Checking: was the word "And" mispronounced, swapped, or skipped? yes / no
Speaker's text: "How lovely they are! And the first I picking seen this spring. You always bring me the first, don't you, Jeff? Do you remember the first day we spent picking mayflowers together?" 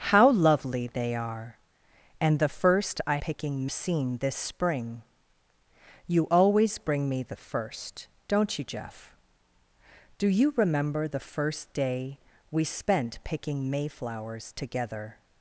no